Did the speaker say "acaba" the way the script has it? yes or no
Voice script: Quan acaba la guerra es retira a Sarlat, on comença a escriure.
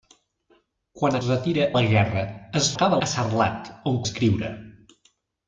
no